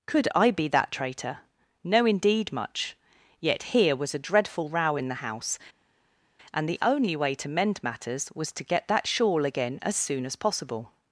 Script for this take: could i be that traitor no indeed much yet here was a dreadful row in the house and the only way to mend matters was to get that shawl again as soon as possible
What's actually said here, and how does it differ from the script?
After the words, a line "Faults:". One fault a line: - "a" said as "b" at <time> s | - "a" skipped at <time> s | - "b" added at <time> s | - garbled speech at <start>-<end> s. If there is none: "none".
could i be that traitor no indeed much yet here was a dreadful row in the house and the only way to mend matters was to get that shawl again as soon as possible
Faults:
none